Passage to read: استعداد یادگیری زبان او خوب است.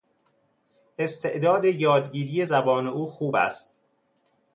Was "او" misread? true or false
false